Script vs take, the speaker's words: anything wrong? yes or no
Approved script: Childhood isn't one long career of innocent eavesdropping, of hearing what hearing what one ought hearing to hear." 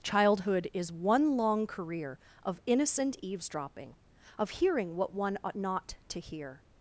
yes